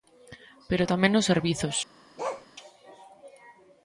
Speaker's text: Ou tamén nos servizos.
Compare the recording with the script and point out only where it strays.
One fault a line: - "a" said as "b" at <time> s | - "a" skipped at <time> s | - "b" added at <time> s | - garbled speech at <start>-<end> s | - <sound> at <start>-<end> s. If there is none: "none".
- "Ou" said as "Pero" at 0.7 s
- bark at 2.2-2.5 s